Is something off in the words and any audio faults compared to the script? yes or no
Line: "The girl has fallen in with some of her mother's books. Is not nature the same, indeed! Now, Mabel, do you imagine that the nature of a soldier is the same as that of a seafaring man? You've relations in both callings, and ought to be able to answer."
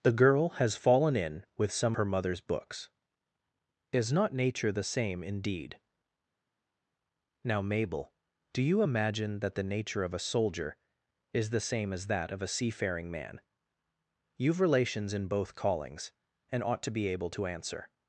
yes